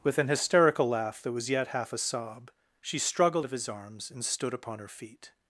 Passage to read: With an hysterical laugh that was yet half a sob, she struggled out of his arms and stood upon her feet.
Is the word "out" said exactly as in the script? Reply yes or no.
no